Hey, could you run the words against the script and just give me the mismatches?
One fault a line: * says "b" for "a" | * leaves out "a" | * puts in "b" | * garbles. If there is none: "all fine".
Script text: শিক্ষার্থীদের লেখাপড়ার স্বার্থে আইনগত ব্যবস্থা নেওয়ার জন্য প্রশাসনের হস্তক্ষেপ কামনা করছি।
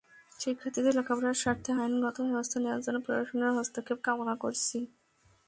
all fine